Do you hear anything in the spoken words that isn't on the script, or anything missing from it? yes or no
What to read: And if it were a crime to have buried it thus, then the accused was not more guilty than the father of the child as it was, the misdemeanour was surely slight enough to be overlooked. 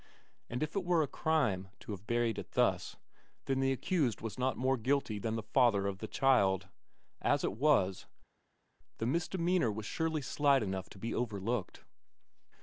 no